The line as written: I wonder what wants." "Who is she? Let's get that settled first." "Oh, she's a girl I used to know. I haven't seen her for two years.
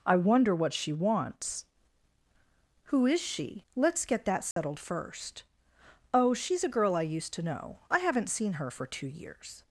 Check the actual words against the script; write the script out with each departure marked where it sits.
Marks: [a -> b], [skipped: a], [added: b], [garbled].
I wonder what [added: she] wants." "Who is she? Let's get that settled first." "Oh, she's a girl I used to know. I haven't seen her for two years.